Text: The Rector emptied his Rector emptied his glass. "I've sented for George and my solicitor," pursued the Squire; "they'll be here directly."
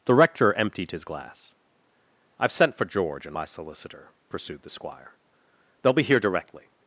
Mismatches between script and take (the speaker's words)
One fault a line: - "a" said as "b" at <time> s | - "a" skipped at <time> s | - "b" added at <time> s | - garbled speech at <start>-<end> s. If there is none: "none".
- "Rector emptied his" skipped at 1.1 s
- "sented" said as "sent" at 2.5 s